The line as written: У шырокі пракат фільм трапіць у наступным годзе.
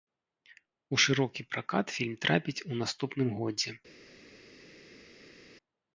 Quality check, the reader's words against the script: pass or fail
pass